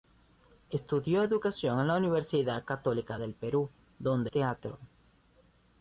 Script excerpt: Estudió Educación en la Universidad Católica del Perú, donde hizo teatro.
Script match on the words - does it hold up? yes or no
no